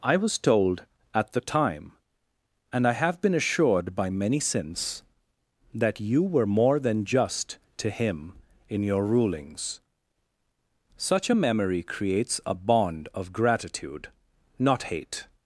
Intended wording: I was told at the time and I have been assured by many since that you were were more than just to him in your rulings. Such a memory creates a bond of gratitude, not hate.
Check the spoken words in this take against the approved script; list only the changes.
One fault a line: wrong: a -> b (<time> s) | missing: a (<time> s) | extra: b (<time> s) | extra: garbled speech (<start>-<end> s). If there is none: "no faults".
missing: were (6.5 s)